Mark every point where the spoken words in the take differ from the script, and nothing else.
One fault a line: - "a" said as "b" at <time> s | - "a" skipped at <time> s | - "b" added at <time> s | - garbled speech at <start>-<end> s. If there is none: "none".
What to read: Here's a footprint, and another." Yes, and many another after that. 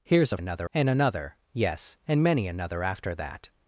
- "footprint" said as "another" at 0.4 s